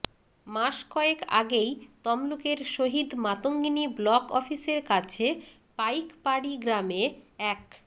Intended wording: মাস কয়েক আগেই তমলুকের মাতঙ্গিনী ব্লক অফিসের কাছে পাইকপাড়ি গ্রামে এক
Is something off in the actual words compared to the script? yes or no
yes